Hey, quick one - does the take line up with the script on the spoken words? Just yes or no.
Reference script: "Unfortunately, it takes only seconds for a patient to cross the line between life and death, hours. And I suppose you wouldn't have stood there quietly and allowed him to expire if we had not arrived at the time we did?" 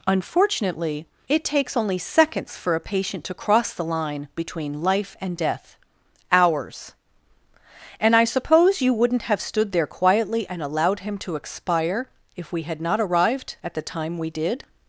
yes